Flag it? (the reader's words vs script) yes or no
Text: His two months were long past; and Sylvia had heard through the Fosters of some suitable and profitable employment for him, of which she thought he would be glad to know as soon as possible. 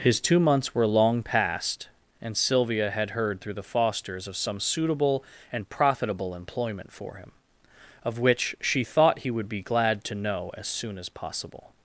no